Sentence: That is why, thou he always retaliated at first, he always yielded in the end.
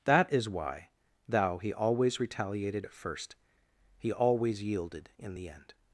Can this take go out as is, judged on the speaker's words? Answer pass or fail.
pass